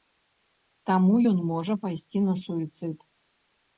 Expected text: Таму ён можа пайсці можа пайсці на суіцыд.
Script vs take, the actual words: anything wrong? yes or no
yes